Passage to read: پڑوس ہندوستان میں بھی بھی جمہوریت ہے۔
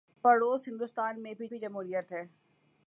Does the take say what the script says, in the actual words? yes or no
yes